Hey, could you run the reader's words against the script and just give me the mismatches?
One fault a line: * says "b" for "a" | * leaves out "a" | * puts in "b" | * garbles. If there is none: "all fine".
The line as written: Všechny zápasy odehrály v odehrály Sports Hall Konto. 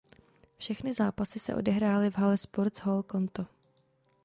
* puts in "se"
* says "hale" for "odehrály"